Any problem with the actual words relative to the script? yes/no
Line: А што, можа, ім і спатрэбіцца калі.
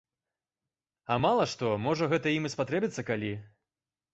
yes